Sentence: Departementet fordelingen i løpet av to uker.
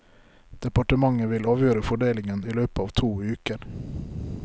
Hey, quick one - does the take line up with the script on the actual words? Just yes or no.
no